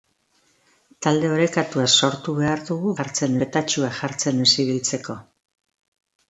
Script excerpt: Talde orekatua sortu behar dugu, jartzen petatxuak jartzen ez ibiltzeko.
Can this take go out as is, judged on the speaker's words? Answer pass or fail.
pass